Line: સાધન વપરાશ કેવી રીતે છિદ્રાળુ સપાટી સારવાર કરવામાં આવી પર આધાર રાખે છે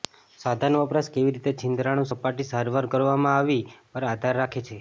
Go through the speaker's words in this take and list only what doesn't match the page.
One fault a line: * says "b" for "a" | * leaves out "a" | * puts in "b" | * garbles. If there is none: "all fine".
all fine